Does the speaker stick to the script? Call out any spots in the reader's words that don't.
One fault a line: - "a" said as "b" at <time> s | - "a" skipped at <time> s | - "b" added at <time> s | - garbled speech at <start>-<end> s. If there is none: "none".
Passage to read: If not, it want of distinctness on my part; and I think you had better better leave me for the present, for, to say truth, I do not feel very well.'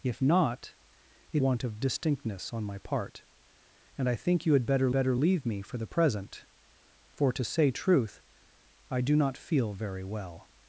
none